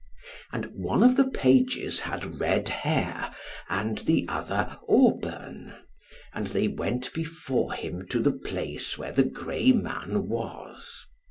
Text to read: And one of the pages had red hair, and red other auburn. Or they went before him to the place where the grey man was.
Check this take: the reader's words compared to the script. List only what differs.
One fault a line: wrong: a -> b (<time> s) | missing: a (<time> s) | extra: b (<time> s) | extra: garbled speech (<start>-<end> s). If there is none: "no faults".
wrong: red -> the (4.0 s)
wrong: Or -> And (6.4 s)